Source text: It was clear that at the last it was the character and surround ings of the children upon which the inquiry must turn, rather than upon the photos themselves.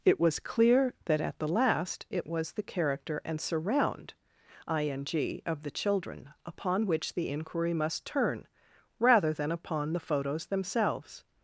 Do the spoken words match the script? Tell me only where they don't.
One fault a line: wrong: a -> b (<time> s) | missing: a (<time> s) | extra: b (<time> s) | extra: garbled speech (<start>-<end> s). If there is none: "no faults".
wrong: ings -> ing (4.7 s)